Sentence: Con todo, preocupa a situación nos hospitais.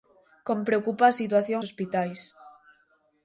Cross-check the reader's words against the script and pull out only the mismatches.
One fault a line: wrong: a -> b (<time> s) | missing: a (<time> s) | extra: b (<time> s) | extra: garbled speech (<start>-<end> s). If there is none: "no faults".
missing: todo (0.6 s)
missing: nos (1.6 s)